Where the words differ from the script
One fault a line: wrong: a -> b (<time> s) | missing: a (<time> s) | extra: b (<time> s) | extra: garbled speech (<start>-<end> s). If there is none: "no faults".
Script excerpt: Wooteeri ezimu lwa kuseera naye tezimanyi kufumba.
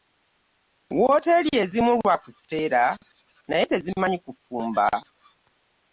no faults